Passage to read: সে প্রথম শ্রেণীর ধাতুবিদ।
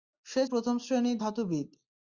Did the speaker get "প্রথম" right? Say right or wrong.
right